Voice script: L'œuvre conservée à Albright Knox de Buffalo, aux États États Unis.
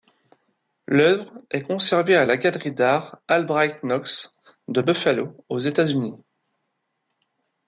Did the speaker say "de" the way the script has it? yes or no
yes